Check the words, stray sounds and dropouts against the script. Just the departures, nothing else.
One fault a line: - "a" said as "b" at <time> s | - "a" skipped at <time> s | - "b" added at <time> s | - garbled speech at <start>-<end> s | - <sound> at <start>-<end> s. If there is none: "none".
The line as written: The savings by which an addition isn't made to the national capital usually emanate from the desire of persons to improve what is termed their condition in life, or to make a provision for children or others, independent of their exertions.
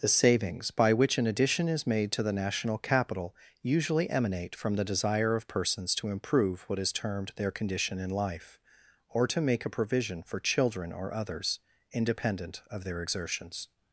- "isn't" said as "is" at 1.7 s